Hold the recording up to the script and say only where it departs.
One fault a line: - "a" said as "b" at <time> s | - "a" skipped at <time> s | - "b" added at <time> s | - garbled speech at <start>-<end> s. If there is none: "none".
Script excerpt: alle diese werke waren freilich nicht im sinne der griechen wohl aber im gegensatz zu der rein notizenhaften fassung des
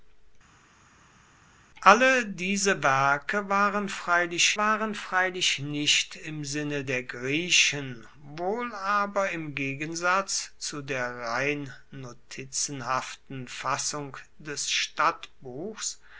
- "waren freilich" added at 4.6 s